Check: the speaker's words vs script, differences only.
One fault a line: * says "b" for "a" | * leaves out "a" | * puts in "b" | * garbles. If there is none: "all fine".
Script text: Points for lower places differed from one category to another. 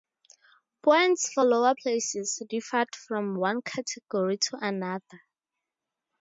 all fine